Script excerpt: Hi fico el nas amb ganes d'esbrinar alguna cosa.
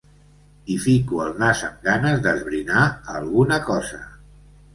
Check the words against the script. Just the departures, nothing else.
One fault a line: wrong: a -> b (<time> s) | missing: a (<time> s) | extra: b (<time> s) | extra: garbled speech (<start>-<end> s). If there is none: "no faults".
no faults